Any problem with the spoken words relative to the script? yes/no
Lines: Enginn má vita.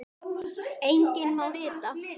no